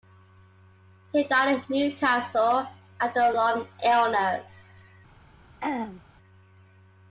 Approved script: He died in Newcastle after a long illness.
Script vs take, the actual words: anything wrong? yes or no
no